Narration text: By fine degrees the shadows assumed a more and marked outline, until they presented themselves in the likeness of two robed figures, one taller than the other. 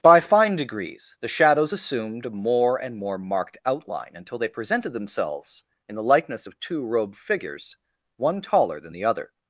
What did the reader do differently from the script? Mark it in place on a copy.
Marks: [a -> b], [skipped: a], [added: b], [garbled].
By fine degrees the shadows assumed a more and [added: more] marked outline, until they presented themselves in the likeness of two robed figures, one taller than the other.